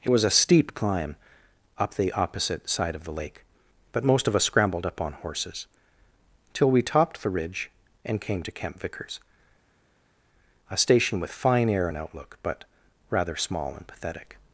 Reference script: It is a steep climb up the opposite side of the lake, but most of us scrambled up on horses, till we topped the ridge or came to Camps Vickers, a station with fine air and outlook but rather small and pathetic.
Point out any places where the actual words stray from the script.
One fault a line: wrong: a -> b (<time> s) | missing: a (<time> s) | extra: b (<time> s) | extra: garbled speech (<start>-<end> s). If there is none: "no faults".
wrong: is -> was (0.1 s)
wrong: or -> and (8.0 s)
wrong: Camps -> Camp (8.5 s)